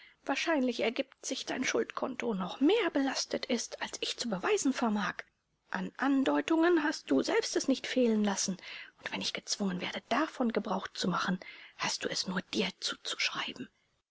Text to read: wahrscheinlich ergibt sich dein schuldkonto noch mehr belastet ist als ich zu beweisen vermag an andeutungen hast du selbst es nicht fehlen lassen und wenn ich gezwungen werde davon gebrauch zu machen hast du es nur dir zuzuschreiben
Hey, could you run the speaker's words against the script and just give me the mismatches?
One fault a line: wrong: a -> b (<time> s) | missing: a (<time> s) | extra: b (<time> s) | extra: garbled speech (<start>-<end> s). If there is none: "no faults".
no faults